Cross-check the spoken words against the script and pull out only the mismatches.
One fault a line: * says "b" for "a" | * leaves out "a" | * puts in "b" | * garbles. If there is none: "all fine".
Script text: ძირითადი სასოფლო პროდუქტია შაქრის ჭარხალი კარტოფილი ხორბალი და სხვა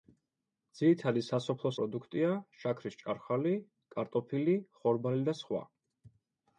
all fine